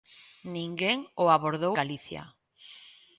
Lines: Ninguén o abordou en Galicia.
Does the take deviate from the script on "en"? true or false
true